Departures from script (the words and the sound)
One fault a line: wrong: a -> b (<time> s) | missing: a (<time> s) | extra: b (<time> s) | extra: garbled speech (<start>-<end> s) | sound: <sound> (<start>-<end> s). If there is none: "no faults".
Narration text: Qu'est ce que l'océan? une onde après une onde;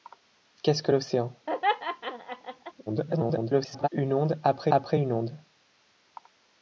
sound: laugh (1.5-2.7 s)
extra: garbled speech (2.9-3.9 s)
extra: après (4.7 s)